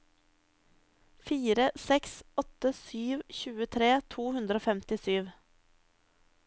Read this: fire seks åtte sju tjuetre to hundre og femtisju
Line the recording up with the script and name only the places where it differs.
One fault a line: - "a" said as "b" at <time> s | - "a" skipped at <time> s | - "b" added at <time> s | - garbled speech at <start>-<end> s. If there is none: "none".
none